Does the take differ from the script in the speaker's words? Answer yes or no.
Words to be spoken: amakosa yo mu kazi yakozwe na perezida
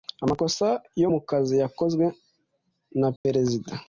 no